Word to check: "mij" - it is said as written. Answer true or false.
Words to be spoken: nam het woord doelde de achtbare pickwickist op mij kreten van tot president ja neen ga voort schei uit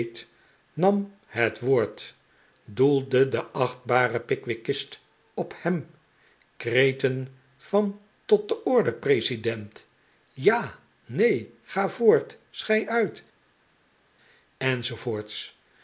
false